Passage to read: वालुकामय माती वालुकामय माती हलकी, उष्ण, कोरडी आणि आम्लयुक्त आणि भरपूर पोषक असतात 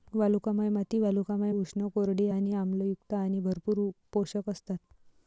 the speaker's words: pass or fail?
fail